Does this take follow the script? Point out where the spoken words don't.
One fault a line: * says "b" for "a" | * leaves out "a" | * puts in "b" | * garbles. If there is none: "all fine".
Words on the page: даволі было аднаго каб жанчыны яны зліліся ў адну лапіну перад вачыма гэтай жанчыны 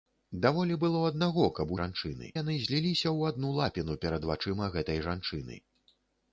all fine